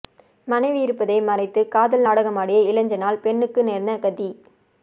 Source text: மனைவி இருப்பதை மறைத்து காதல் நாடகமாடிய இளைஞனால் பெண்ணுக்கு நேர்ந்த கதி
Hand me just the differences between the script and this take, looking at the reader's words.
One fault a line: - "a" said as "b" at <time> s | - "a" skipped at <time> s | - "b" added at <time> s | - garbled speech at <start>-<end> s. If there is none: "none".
none